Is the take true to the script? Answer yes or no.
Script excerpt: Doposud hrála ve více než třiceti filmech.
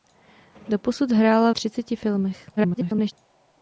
no